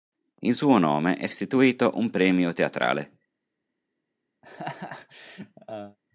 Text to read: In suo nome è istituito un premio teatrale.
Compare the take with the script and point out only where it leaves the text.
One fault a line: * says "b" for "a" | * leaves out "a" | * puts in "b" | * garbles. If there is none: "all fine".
all fine